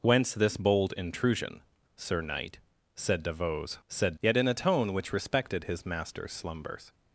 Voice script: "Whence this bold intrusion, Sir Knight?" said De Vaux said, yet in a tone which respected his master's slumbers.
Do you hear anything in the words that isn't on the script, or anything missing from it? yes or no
no